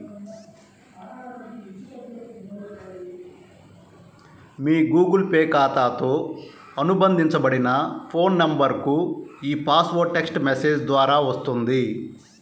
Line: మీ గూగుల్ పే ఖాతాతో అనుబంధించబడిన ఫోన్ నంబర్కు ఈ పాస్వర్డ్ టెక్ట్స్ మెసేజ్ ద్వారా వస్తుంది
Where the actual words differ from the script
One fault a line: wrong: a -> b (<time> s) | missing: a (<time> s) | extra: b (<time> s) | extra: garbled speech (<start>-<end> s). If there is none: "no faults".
no faults